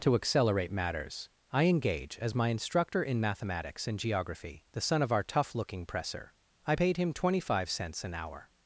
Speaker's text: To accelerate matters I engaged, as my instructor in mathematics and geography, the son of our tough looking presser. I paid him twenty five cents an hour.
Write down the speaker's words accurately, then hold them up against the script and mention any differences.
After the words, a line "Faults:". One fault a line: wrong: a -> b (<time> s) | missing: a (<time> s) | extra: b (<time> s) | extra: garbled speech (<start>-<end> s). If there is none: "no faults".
To accelerate matters I engage, as my instructor in mathematics and geography, the son of our tough looking presser. I paid him twenty five cents an hour.
Faults:
wrong: engaged -> engage (1.6 s)